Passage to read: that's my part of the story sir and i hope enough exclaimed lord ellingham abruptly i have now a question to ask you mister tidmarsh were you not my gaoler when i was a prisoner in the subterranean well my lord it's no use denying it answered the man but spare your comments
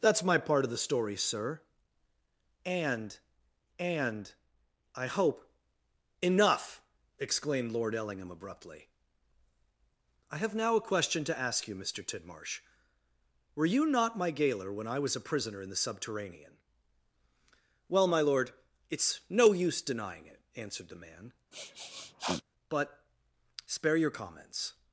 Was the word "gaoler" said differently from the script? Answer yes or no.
no